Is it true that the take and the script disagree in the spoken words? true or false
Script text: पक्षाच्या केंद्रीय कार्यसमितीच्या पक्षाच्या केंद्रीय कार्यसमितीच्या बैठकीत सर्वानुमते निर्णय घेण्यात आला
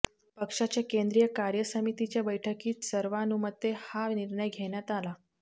true